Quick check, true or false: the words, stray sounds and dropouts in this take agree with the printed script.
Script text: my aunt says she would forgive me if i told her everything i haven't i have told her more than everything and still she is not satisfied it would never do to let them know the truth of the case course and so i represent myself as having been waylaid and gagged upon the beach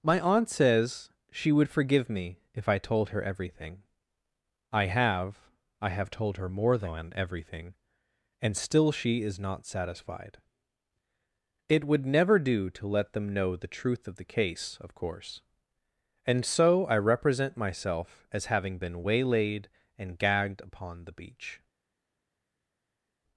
false